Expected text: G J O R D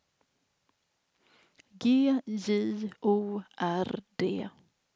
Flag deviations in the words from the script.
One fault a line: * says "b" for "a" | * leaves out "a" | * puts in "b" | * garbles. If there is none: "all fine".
all fine